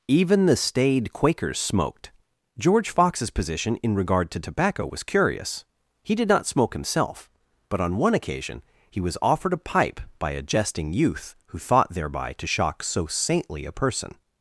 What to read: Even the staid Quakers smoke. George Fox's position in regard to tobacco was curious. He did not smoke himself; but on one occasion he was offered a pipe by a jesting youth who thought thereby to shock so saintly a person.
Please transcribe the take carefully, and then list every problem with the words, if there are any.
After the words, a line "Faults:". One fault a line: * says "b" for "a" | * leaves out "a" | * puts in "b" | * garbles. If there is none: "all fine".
Even the staid Quakers smoked. George Fox's position in regard to tobacco was curious. He did not smoke himself; but on one occasion he was offered a pipe by a jesting youth who thought thereby to shock so saintly a person.
Faults:
* says "smoked" for "smoke"